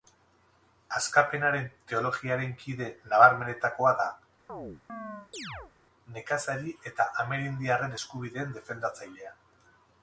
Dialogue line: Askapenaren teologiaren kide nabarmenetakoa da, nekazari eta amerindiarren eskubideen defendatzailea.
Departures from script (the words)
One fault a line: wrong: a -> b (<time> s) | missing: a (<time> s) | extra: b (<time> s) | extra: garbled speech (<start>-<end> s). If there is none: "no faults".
no faults